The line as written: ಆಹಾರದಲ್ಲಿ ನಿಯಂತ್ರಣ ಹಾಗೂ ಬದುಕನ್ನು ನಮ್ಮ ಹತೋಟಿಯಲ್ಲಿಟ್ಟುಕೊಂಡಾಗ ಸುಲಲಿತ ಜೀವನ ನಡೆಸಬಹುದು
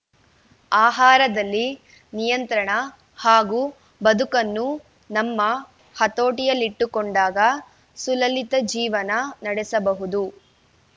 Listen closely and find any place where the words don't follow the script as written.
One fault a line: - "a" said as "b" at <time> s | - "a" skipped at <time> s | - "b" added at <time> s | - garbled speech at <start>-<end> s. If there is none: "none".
none